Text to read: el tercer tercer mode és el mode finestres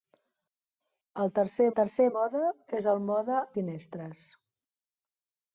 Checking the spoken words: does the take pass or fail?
pass